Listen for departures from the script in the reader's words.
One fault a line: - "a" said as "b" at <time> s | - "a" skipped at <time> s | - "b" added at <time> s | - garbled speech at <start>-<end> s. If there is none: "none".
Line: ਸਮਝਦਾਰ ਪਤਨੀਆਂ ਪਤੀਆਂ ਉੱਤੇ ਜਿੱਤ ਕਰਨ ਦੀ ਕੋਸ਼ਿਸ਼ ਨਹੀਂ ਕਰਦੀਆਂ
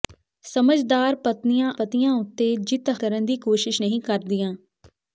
none